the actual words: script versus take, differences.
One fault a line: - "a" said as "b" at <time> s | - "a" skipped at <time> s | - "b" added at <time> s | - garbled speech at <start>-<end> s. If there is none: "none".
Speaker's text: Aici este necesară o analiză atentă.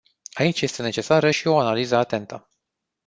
- "și" added at 1.3 s